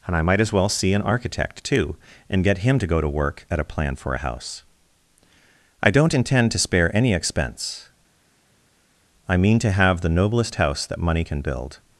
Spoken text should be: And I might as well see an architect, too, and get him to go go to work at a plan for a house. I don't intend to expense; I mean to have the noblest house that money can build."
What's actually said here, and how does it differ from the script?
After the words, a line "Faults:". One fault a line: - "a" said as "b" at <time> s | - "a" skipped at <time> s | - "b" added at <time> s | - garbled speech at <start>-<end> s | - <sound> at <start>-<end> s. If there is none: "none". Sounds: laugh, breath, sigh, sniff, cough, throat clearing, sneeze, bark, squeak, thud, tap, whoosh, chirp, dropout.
And I might as well see an architect, too, and get him to go to work at a plan for a house. I don't intend to spare any expense; I mean to have the noblest house that money can build."
Faults:
- "go" skipped at 3.0 s
- "spare any" added at 6.6 s